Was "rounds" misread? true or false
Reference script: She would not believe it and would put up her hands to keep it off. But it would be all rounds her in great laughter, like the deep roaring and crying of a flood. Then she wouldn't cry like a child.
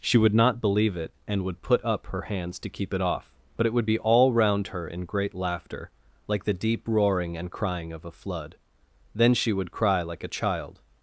true